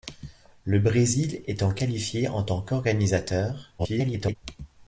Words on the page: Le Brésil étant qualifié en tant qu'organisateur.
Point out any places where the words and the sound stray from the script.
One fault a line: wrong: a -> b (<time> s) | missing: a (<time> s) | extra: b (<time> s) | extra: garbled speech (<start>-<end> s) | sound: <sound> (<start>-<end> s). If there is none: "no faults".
extra: garbled speech (3.8-4.4 s)